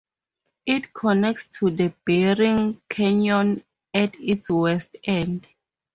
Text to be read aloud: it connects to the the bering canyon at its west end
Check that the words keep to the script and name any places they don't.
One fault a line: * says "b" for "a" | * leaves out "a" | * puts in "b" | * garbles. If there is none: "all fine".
* leaves out "the"